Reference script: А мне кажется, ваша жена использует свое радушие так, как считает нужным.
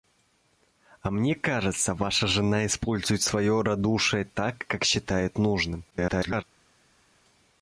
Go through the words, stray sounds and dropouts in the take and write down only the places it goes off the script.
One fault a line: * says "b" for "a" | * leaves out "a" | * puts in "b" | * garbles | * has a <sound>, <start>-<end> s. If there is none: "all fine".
* garbles